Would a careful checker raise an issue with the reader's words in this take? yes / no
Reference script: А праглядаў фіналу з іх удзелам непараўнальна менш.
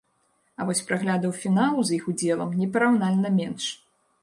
yes